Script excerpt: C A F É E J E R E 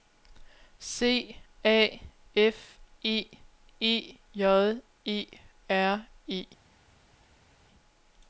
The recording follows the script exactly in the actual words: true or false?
true